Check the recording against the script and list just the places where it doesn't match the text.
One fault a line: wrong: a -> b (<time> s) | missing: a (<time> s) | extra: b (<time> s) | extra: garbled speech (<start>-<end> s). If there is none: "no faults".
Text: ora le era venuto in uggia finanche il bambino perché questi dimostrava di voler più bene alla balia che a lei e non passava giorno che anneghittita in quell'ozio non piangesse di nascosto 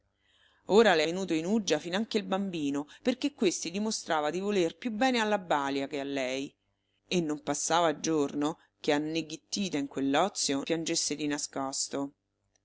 missing: era (1.0 s)
missing: non (10.6 s)